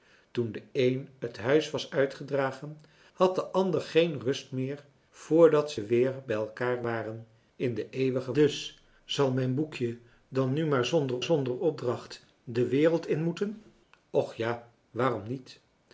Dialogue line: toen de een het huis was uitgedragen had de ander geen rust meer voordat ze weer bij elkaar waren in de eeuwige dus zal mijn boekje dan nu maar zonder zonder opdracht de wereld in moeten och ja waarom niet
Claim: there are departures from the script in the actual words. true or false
false